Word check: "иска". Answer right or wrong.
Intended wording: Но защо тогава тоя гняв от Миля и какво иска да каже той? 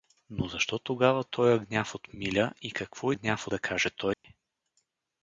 wrong